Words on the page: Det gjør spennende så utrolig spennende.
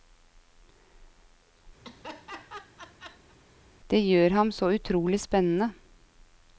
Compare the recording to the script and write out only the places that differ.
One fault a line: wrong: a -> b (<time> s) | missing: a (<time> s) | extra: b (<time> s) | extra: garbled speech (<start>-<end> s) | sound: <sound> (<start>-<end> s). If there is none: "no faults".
sound: laugh (1.8-3.3 s)
wrong: spennende -> ham (4.4 s)